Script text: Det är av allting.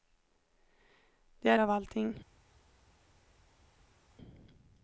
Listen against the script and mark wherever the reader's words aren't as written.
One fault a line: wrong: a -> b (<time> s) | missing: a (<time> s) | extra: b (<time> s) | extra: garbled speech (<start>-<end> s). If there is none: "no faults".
no faults